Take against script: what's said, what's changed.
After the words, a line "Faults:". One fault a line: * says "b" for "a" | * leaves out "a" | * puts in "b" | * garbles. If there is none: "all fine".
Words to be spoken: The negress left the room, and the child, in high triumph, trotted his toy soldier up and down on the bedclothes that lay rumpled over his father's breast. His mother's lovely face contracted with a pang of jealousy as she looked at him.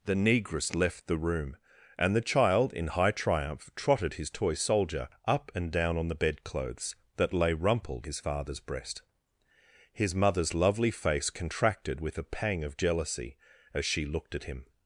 The negress left the room, and the child, in high triumph, trotted his toy soldier up and down on the bedclothes that lay rumpled his father's breast. His mother's lovely face contracted with a pang of jealousy as she looked at him.
Faults:
* leaves out "over"